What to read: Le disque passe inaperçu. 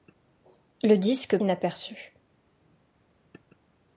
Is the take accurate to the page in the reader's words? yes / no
no